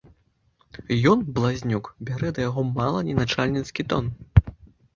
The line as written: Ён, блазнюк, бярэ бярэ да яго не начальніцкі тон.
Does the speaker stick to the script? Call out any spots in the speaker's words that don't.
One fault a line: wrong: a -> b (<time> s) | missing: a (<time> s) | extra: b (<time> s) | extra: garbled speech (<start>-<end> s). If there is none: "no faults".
missing: бярэ (2.3 s)
extra: мала (2.8 s)